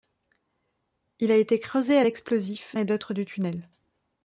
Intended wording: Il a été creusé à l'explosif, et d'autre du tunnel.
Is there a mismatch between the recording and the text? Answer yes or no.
no